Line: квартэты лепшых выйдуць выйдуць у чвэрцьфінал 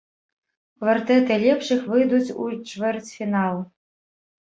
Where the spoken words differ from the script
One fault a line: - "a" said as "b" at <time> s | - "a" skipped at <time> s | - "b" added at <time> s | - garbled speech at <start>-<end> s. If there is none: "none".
- "выйдуць" skipped at 2.3 s